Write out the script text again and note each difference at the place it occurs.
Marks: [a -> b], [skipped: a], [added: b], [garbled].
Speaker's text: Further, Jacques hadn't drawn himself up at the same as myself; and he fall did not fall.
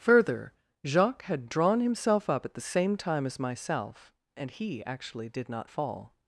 Further, Jacques [hadn't -> had] drawn himself up at the same [added: time] as myself; and he [fall -> actually] did not fall.